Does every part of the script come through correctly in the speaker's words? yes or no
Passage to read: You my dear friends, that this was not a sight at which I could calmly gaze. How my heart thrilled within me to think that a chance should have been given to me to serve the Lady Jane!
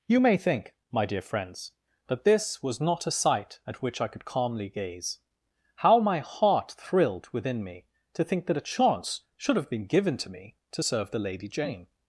no